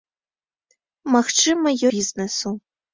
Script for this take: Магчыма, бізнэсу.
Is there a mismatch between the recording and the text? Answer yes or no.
no